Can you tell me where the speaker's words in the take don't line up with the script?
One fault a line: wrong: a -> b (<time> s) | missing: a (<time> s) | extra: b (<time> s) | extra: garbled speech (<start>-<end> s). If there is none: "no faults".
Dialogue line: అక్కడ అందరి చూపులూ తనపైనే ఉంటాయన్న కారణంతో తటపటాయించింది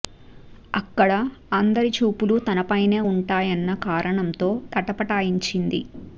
no faults